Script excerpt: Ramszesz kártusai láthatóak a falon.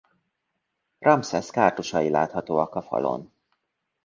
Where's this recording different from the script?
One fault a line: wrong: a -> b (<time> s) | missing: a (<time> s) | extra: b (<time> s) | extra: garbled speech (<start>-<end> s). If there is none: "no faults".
no faults